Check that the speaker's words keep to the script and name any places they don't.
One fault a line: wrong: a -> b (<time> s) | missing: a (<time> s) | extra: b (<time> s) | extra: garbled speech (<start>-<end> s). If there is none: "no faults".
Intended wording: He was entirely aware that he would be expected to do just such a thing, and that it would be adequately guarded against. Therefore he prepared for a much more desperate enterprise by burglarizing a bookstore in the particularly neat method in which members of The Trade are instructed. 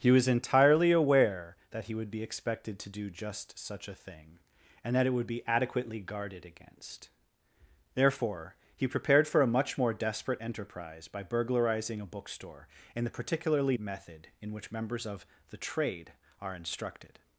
missing: neat (13.8 s)